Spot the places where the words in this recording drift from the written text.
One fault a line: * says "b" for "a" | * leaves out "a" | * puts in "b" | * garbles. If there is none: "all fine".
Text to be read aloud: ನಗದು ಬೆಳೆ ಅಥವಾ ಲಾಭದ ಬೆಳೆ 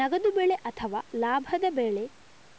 all fine